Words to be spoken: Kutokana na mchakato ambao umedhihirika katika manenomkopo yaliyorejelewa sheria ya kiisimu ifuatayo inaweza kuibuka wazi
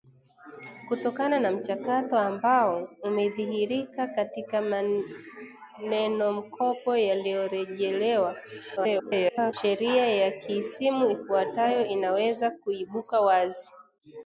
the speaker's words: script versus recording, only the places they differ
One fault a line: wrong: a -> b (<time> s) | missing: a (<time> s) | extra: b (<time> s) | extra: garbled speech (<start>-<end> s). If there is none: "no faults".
extra: garbled speech (8.8-9.5 s)